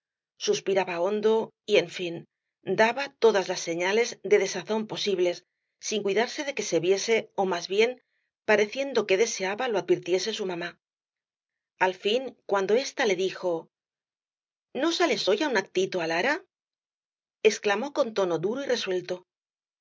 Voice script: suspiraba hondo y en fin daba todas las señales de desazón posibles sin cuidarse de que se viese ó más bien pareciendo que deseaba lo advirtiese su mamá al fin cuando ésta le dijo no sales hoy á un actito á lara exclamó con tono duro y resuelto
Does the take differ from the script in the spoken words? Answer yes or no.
no